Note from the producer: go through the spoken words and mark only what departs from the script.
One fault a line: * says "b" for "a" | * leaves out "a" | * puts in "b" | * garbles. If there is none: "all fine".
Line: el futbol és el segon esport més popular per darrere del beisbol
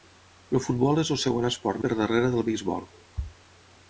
* leaves out "més popular"